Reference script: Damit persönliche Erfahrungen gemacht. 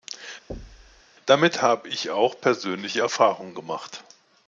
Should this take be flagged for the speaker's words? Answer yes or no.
yes